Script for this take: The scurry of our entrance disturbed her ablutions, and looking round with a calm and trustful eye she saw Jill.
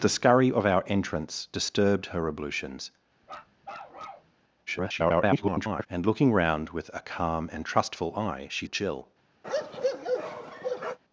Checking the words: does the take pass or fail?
fail